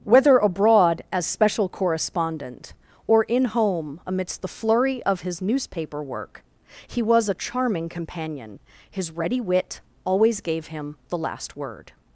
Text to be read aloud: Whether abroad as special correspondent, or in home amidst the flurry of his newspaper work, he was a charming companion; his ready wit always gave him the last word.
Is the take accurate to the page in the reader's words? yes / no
yes